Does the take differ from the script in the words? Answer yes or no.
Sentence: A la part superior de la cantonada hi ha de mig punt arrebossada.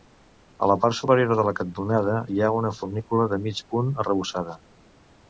yes